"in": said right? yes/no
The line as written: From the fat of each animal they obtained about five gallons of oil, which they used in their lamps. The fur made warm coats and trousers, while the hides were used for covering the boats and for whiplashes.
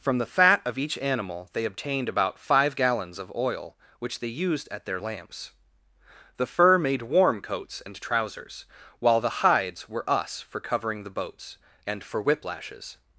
no